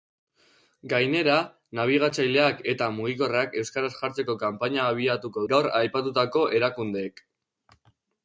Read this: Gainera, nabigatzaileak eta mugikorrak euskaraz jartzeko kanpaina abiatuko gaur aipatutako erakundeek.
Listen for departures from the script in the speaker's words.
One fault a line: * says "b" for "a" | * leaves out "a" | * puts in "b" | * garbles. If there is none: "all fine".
all fine